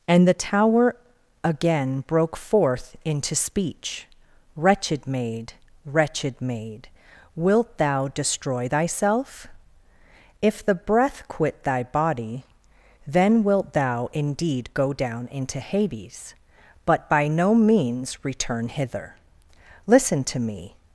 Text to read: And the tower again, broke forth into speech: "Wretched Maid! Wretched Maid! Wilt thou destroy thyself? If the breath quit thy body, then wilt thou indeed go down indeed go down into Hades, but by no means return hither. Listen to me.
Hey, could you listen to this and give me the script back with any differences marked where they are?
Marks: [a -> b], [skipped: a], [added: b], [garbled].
And the tower again, broke forth into speech: "Wretched Maid! Wretched Maid! Wilt thou destroy thyself? If the breath quit thy body, then wilt thou indeed go down [skipped: indeed go down] into Hades, but by no means return hither. Listen to me.